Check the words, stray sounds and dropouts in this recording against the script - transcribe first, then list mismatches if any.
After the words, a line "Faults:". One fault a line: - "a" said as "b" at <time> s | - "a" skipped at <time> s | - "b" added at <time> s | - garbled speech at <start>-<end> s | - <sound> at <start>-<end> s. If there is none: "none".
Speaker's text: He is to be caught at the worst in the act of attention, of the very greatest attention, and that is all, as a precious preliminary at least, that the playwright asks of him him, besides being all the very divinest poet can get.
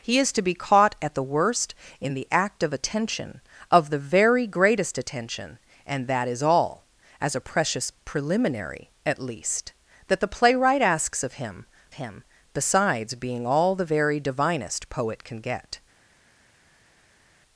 He is to be caught at the worst in the act of attention, of the very greatest attention, and that is all, as a precious preliminary at least, that the playwright asks of him him, besides being all the very divinest poet can get.
Faults:
none